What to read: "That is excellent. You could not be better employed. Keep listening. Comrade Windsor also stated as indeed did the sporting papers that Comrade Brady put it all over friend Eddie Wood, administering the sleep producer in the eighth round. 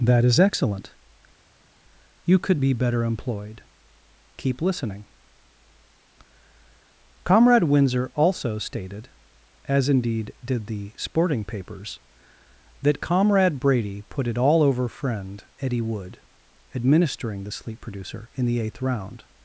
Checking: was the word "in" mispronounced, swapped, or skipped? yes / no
no